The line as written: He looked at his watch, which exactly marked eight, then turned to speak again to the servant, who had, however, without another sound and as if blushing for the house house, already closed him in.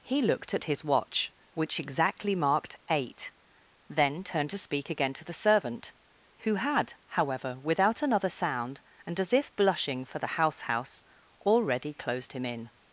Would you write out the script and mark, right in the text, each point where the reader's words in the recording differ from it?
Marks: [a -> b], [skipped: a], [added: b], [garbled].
He looked at his watch, which exactly marked eight, then turned to speak again to the servant, who had, however, without another sound and as if blushing for the house house, already closed him in.